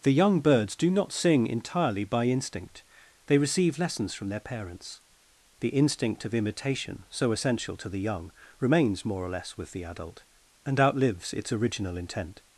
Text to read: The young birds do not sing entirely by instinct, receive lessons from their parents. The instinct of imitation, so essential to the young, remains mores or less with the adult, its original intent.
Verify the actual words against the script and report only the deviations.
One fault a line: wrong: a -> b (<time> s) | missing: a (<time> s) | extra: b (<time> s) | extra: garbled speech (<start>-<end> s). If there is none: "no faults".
extra: they (3.3 s)
wrong: mores -> more (9.0 s)
extra: and outlives (10.6 s)